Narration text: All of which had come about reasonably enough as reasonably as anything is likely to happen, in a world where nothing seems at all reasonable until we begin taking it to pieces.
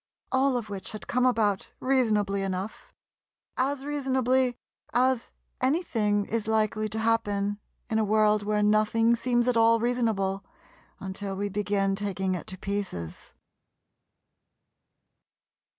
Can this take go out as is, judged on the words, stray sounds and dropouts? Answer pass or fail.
pass